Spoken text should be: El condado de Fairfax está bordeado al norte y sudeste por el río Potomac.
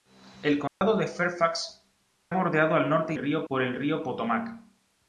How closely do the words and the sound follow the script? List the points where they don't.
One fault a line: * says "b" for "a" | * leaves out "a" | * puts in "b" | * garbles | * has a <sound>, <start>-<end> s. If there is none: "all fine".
* has a dropout, 0.7-0.8 s
* leaves out "está"
* says "río" for "sudeste"